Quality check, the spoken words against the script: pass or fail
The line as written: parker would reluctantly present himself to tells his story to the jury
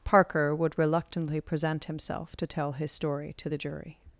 fail